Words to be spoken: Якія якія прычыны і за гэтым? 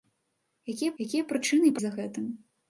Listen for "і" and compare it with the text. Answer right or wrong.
right